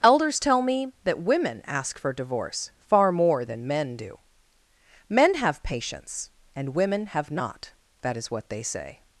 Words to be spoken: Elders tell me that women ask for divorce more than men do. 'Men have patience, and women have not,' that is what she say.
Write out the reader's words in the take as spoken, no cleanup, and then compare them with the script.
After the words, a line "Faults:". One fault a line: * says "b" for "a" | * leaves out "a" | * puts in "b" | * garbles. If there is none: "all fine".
Elders tell me that women ask for divorce far more than men do. 'Men have patience, and women have not,' that is what they say.
Faults:
* puts in "far"
* says "they" for "she"